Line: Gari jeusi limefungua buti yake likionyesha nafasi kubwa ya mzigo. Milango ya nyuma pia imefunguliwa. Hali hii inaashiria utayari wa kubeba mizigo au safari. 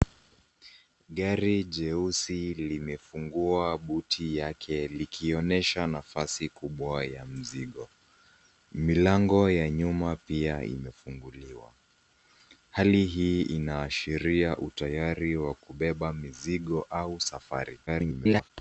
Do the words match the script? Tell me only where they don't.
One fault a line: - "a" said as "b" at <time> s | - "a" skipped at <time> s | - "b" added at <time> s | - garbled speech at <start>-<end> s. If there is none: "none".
- garbled speech at 17.9-18.5 s